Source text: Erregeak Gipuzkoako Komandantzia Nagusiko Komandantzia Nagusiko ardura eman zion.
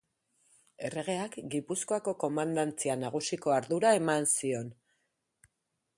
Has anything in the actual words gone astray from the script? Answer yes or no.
yes